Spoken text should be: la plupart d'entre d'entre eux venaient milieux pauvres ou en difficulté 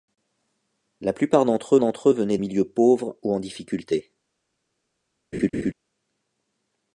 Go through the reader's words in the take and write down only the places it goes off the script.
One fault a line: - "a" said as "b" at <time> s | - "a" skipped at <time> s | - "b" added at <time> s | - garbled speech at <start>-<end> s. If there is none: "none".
none